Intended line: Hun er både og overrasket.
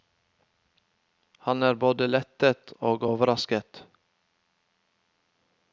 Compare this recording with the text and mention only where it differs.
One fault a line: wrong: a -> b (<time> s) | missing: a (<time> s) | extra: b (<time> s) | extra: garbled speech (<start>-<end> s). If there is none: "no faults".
wrong: Hun -> Han (1.5 s)
extra: lettet (2.1 s)